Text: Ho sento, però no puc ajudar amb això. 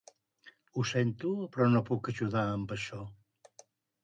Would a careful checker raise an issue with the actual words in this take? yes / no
no